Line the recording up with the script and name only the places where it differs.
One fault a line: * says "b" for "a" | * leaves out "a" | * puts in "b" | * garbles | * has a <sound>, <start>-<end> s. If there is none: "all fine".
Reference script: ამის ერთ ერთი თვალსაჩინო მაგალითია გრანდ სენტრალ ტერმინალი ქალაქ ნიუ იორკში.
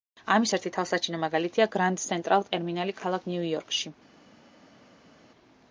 * leaves out "ერთ"